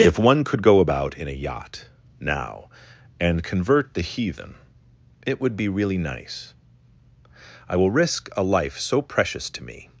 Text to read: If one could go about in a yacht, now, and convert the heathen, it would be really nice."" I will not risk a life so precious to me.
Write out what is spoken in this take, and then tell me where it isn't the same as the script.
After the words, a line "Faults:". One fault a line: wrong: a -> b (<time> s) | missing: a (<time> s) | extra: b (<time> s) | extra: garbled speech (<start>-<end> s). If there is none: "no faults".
If one could go about in a yacht, now, and convert the heathen, it would be really nice."" I will risk a life so precious to me.
Faults:
missing: not (7.9 s)